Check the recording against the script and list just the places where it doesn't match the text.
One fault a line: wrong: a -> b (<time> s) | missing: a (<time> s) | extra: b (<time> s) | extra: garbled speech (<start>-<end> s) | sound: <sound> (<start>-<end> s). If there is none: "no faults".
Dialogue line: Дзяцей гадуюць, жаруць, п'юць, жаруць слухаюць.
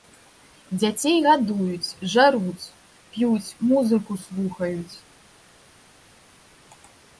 wrong: жаруць -> музыку (3.7 s)